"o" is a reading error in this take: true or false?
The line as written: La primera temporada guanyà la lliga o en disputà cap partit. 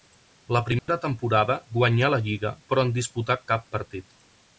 true